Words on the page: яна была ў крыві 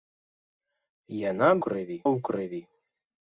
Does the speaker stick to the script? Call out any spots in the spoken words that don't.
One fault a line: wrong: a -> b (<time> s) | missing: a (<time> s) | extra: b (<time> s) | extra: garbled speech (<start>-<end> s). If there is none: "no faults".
wrong: была -> крыві (1.6 s)